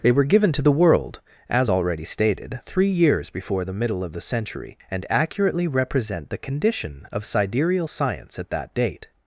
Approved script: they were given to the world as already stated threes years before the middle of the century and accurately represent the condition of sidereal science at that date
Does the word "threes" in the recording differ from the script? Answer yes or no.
yes